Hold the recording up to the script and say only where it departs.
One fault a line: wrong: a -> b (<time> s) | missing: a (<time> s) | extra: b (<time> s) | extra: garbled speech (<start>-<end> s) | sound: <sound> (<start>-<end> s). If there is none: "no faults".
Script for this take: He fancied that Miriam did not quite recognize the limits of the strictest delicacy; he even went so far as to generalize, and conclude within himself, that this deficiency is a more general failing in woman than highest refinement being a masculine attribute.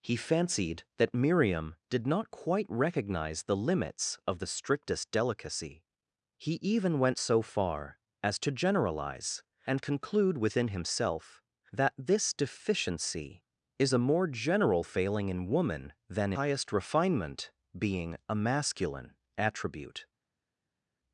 no faults